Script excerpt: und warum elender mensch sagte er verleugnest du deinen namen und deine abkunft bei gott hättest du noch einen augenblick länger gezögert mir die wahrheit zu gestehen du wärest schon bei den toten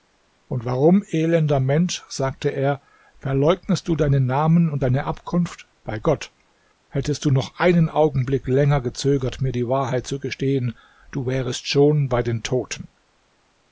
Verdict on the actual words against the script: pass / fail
pass